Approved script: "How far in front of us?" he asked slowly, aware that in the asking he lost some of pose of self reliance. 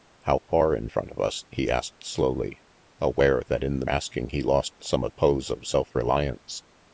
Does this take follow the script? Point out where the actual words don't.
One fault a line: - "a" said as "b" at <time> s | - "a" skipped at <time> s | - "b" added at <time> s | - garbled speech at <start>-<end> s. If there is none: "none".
none